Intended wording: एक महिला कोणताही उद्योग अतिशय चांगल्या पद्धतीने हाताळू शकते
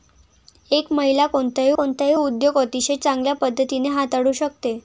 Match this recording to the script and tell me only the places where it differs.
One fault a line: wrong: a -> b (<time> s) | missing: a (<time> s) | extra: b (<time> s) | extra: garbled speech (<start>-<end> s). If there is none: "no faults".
extra: कोणताही (1.7 s)